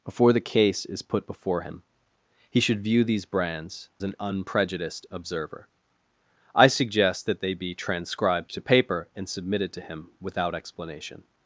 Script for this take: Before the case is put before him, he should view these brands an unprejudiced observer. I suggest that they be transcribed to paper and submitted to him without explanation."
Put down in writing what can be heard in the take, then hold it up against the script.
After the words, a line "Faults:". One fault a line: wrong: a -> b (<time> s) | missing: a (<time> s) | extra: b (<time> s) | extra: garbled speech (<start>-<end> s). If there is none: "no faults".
Before the case is put before him, he should view these brands an unprejudiced observer. I suggest that they be transcribed to paper and submitted to him without explanation."
Faults:
no faults